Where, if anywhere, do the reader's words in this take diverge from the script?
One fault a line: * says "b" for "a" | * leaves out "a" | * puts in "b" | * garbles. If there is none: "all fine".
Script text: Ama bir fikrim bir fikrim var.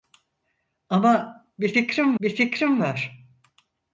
all fine